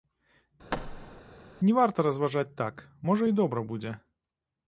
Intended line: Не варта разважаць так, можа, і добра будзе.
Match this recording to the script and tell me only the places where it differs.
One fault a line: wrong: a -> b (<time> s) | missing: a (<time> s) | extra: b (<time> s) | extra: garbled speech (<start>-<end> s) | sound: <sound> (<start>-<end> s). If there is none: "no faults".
sound: thud (0.7-1.2 s)